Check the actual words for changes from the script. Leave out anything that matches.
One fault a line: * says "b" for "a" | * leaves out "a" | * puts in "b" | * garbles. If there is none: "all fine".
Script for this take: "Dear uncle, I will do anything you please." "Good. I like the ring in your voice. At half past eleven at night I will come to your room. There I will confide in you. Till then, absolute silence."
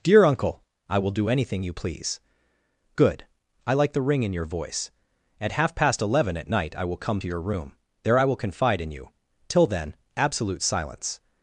all fine